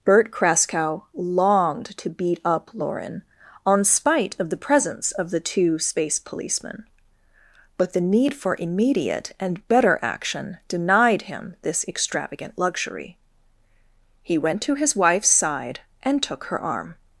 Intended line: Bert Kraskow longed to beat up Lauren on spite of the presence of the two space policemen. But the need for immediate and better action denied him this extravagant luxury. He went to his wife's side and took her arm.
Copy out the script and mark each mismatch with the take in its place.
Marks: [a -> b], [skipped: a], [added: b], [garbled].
Bert Kraskow longed to beat up Lauren on spite of the presence of the two space policemen. But the need for immediate and better action denied him this extravagant luxury. He went to his wife's side and took her arm.